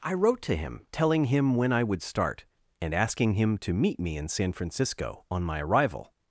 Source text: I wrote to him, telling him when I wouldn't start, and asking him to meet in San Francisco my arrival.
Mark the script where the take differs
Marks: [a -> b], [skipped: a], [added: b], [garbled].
I wrote to him, telling him when I [wouldn't -> would] start, and asking him to meet [added: me] in San Francisco [added: on] my arrival.